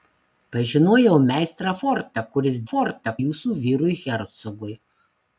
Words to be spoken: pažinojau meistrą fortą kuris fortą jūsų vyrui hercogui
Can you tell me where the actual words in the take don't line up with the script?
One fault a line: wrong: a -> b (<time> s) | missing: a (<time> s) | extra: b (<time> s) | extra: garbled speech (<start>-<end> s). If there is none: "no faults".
no faults